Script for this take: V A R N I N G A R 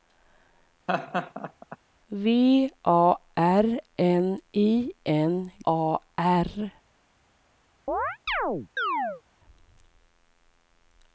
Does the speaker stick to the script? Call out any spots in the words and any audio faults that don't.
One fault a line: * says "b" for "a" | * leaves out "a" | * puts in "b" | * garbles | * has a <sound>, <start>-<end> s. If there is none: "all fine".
* has a laugh, 0.9-1.8 s
* leaves out "G"
* has a chirp, 7.9-9.2 s